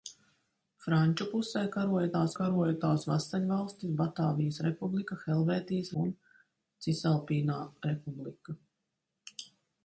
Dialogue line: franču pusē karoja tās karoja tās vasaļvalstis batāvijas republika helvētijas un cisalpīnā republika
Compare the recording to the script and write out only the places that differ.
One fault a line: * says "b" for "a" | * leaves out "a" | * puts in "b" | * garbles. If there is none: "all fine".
all fine